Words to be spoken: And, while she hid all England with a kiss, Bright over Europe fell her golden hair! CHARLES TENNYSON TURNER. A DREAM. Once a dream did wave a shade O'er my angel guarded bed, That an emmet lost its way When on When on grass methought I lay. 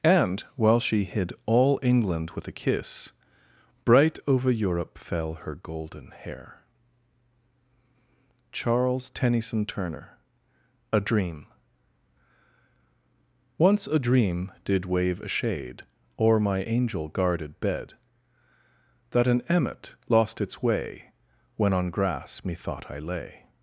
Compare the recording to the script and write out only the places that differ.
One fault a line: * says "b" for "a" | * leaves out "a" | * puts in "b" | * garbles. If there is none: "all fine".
* leaves out "When on"